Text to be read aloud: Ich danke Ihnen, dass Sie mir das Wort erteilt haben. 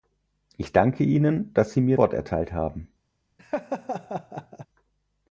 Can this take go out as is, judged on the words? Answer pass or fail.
fail